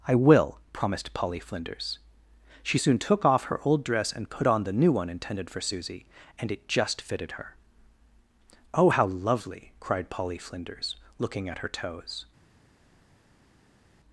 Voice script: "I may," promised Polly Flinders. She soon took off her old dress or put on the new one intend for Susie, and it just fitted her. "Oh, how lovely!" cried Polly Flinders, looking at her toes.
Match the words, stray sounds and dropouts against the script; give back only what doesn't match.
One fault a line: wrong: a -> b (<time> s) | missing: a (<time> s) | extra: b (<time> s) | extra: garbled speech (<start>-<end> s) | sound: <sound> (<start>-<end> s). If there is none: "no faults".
wrong: may -> will (0.1 s)
wrong: or -> and (4.1 s)
wrong: intend -> intended (5.1 s)